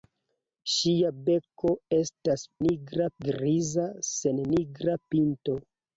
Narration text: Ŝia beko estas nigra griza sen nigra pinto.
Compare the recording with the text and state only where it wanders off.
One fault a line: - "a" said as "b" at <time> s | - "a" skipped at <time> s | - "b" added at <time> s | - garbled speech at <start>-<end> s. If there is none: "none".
none